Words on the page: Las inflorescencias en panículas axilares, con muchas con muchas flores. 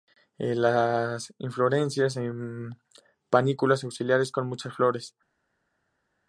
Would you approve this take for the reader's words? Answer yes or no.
no